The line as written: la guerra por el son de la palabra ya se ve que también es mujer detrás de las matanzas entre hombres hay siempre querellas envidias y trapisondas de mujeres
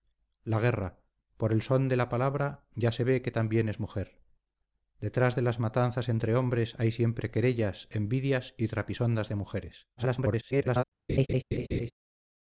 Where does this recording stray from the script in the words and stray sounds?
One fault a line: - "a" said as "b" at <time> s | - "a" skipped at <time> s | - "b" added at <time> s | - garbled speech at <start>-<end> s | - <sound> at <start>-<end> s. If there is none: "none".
- garbled speech at 10.0-10.8 s
- laugh at 11.1-11.9 s